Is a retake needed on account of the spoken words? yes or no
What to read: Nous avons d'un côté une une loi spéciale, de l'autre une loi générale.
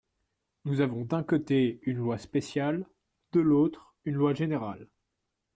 yes